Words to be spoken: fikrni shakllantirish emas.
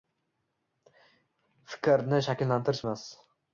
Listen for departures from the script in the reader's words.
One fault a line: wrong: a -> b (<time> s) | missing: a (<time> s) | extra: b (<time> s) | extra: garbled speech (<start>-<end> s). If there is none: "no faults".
no faults